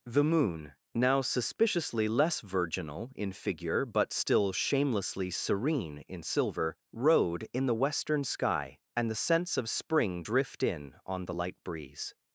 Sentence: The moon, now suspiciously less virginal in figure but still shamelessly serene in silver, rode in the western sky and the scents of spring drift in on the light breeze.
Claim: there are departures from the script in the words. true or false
false